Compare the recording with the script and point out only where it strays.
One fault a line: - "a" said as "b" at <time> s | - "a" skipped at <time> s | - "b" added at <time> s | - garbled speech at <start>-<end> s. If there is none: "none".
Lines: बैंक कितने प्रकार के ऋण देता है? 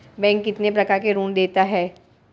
none